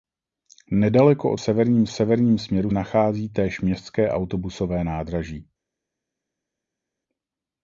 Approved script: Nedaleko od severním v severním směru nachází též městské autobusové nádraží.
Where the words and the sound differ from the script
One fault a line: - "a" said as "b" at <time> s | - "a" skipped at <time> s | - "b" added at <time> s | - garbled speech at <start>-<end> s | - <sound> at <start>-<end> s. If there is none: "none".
none